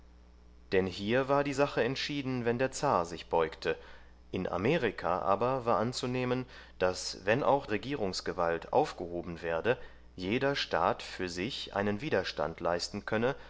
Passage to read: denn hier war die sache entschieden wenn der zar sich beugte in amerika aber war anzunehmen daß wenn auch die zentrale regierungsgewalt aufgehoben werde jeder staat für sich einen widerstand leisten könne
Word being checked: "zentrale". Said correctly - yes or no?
no